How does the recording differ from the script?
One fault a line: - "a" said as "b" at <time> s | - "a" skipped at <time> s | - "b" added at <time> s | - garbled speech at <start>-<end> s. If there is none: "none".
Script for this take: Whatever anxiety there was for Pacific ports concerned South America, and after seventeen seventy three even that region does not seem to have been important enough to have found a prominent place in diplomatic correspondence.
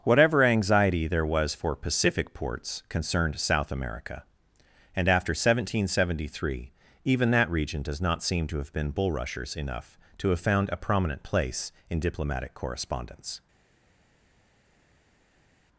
- "important" said as "bulrushers" at 8.9 s